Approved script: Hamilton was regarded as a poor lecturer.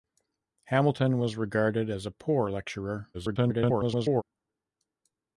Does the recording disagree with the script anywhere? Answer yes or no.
yes